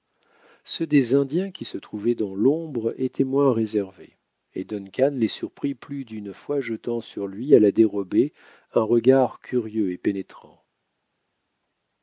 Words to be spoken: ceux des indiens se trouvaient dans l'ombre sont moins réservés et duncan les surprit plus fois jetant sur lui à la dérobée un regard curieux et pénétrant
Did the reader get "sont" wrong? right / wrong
wrong